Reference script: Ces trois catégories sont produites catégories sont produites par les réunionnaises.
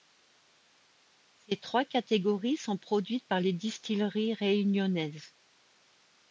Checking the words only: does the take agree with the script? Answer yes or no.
no